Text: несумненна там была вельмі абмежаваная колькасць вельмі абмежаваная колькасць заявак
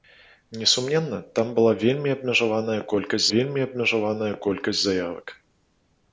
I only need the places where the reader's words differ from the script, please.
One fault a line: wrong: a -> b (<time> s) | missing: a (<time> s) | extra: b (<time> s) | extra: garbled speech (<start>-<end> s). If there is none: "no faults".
no faults